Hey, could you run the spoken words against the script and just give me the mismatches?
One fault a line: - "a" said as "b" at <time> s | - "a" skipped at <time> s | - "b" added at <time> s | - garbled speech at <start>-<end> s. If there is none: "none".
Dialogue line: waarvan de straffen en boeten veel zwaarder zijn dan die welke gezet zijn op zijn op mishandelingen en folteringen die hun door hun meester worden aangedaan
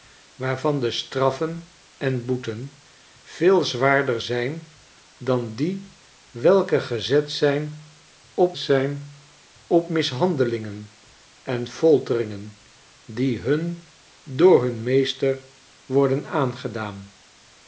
none